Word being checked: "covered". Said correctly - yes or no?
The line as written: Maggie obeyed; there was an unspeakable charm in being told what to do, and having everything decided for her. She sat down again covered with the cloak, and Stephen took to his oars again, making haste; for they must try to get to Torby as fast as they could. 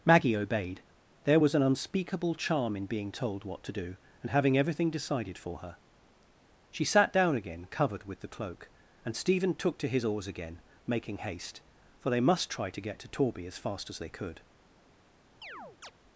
yes